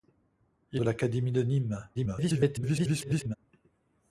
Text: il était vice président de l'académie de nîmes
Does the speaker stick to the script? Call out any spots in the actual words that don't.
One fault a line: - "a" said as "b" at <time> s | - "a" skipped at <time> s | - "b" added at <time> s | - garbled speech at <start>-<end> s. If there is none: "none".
- "était vice président" skipped at 0.8 s
- garbled speech at 1.9-3.4 s